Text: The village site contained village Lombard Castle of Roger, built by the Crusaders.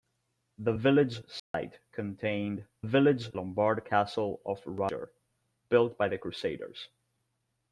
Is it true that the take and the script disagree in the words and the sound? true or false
true